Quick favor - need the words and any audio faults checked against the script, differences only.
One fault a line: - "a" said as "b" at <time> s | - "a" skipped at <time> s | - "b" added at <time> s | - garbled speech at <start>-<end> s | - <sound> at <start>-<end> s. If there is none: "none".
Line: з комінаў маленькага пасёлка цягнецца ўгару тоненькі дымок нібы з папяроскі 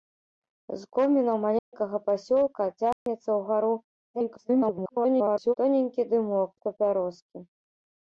- dropout at 1.6-1.7 s
- dropout at 2.9-3.1 s
- garbled speech at 4.1-5.5 s
- "нібы" skipped at 6.5 s